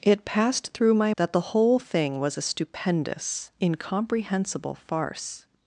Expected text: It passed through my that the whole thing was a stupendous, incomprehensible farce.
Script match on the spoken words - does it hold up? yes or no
yes